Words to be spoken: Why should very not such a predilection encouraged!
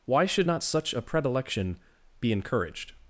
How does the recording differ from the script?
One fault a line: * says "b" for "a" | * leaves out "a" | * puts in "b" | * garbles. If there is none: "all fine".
* leaves out "very"
* puts in "be"